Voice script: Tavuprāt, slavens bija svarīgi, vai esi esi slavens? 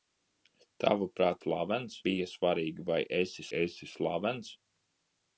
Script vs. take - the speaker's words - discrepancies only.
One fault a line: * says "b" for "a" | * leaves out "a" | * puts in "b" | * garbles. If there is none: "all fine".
all fine